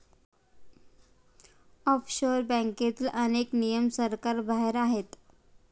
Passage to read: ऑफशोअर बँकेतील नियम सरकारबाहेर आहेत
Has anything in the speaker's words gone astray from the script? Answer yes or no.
yes